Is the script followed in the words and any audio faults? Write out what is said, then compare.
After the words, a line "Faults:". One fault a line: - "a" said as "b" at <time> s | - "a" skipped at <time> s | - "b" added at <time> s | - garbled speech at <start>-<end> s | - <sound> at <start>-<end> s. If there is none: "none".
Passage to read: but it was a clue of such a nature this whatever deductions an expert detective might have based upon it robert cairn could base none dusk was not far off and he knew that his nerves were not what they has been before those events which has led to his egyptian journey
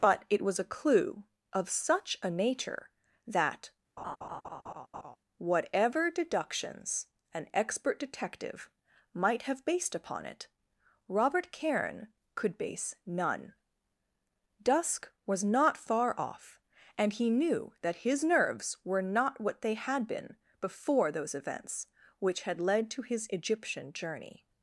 but it was a clue of such a nature that whatever deductions an expert detective might have based upon it robert cairn could base none dusk was not far off and he knew that his nerves were not what they had been before those events which had led to his egyptian journey
Faults:
- "this" said as "that" at 3.3 s
- laugh at 4.0-5.2 s
- "has" said as "had" at 19.7 s
- "has" said as "had" at 22.4 s